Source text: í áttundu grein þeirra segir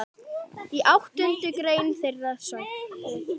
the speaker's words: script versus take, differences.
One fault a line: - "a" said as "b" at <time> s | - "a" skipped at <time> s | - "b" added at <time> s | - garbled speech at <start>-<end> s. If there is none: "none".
none